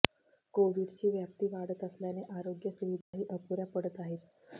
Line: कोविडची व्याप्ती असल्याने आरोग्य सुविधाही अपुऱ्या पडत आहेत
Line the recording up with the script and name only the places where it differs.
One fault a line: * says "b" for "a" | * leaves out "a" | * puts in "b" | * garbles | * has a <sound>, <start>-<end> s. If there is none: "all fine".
* puts in "वाढत"
* has a dropout, 3.0-3.1 s